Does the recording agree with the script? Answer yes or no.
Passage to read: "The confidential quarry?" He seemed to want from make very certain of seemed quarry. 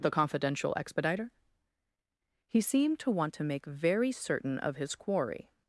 no